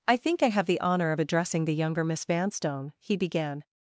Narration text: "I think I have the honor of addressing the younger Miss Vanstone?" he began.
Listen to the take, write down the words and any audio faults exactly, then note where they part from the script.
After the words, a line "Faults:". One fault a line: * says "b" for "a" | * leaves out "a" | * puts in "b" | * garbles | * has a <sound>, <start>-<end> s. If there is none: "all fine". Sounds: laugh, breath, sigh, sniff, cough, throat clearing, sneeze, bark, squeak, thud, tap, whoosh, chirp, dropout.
"I think I have the honor of addressing the younger Miss Vanstone?" he began.
Faults:
all fine